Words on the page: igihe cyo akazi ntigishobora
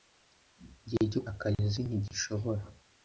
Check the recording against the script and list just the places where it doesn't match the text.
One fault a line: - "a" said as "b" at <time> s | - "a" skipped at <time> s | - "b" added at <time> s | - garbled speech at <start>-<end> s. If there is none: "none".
none